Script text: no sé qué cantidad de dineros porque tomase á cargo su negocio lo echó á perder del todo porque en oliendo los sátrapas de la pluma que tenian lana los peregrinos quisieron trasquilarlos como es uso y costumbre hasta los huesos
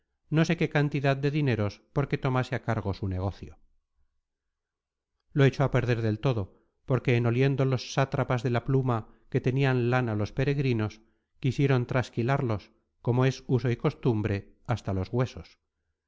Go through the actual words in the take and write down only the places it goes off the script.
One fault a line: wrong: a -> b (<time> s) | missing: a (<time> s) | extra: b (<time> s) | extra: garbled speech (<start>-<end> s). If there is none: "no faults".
no faults